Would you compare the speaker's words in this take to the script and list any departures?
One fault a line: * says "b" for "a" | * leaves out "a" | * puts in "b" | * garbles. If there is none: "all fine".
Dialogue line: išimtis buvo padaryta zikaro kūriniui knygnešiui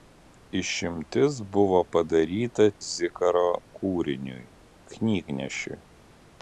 all fine